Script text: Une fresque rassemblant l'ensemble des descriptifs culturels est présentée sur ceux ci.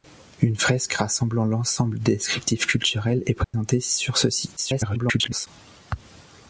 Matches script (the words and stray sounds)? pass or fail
fail